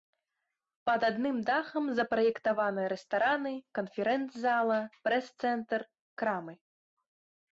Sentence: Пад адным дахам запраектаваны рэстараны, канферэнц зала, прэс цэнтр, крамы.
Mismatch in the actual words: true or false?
false